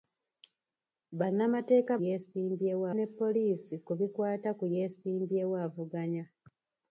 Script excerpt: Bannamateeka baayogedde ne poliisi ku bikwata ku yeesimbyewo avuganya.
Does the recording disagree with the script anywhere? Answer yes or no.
yes